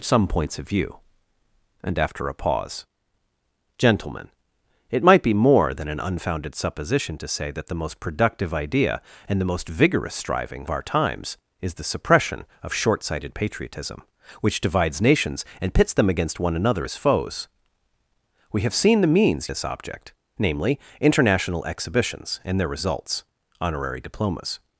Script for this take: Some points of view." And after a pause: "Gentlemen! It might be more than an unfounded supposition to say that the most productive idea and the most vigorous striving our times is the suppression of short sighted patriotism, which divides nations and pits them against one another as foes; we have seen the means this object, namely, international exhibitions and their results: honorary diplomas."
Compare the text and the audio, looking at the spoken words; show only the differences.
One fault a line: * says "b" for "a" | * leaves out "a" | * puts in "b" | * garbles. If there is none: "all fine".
all fine